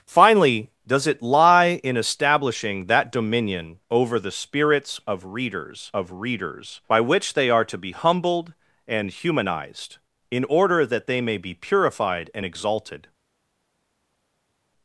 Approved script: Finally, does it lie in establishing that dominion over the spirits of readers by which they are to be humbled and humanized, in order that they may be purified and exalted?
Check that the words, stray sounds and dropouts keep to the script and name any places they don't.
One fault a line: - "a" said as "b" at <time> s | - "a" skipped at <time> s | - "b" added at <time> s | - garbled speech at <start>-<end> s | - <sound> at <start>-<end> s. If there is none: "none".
- "of readers" added at 5.9 s